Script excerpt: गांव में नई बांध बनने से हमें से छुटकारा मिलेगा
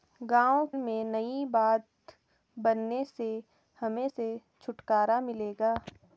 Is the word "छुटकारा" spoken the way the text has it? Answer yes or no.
yes